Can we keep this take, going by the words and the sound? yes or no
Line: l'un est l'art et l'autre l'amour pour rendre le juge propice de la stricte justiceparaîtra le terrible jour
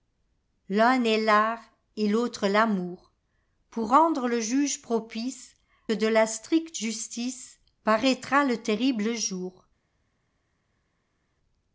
yes